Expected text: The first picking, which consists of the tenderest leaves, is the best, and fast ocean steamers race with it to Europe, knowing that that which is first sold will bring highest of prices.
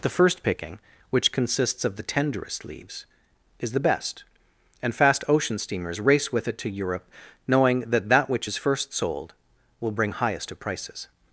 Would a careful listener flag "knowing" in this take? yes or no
no